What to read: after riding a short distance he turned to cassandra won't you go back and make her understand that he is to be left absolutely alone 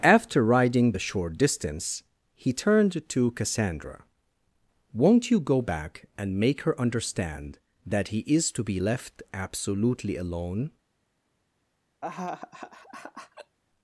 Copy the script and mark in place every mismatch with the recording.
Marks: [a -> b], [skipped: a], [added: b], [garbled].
after riding [a -> the] short distance he turned to cassandra won't you go back and make her understand that he is to be left absolutely alone